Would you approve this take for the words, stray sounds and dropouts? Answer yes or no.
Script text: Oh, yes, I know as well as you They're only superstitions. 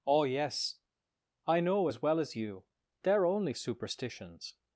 yes